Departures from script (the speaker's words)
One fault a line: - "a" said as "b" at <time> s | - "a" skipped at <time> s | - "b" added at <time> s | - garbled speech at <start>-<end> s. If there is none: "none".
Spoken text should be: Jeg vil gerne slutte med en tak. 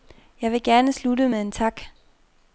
none